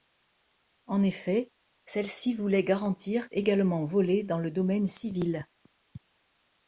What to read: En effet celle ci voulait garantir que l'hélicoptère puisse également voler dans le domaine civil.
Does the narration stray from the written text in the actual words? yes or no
yes